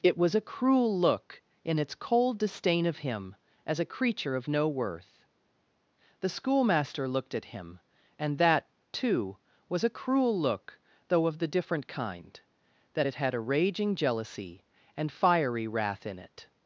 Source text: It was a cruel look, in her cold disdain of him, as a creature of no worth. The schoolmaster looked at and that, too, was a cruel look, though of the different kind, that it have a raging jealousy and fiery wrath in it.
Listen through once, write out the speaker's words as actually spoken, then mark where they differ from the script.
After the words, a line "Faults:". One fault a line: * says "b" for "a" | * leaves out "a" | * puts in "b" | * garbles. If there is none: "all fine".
It was a cruel look, in its cold disdain of him, as a creature of no worth. The schoolmaster looked at him, and that, too, was a cruel look, though of the different kind, that it had a raging jealousy and fiery wrath in it.
Faults:
* says "its" for "her"
* puts in "him"
* says "had" for "have"